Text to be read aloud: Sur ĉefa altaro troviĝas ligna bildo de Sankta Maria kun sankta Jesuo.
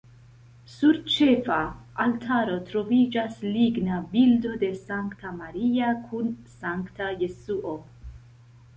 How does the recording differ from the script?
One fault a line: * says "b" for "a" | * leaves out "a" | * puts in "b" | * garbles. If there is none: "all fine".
all fine